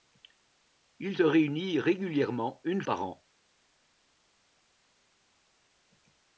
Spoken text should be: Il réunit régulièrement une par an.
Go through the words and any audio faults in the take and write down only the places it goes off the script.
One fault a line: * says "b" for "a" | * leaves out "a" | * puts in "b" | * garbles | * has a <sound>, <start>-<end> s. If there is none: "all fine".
all fine